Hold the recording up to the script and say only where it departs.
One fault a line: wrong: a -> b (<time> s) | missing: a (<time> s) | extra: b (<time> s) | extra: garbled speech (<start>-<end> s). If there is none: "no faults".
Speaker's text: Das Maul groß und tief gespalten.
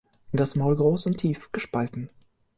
no faults